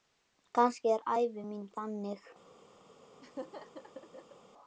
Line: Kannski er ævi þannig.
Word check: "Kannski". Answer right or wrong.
right